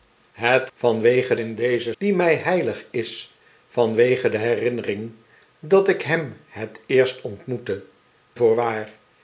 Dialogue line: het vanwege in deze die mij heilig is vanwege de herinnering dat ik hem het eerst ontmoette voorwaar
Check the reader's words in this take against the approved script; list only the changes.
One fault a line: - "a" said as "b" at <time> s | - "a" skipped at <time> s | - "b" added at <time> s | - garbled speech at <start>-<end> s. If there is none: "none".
none